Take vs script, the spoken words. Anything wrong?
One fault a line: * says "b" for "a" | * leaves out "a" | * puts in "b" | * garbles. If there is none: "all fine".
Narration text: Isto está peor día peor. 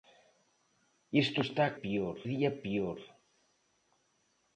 all fine